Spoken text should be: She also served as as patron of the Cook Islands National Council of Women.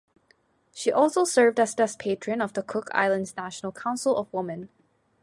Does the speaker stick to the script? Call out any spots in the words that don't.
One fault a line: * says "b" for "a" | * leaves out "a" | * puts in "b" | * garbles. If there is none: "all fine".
all fine